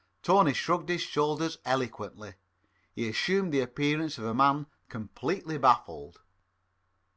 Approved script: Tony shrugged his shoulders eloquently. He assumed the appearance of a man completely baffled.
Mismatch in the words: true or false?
false